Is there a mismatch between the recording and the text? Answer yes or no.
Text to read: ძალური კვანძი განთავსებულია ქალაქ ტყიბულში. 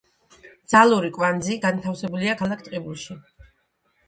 no